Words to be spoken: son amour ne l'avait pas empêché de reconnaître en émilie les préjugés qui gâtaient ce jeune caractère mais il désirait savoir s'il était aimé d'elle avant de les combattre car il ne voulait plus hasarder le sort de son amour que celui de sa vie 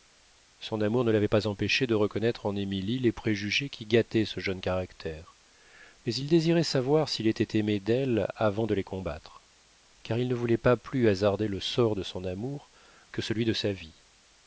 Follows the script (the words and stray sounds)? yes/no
no